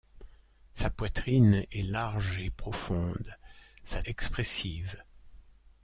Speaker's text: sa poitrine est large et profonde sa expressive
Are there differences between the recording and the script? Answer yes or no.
no